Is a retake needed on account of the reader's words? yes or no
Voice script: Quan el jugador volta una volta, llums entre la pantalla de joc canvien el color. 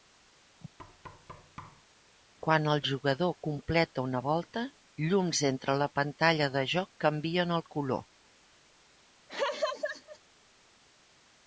yes